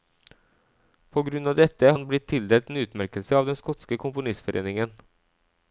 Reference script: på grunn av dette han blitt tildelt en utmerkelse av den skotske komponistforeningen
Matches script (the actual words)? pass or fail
pass